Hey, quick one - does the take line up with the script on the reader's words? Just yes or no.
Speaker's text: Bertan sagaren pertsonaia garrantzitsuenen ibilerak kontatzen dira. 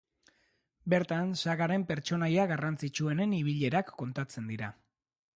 yes